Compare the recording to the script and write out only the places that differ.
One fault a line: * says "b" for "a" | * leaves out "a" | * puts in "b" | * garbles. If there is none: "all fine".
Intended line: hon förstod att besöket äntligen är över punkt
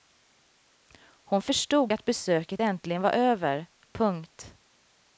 * says "var" for "är"